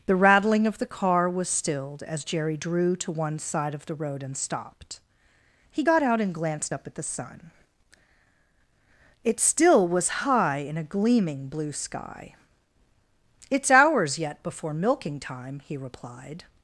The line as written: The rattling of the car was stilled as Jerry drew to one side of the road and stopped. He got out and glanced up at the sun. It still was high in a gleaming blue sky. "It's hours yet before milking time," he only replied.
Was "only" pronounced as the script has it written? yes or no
no